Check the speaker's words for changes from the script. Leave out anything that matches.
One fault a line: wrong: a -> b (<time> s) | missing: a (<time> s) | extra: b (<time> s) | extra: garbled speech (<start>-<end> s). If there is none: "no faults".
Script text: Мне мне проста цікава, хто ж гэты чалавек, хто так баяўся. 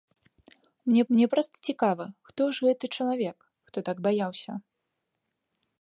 no faults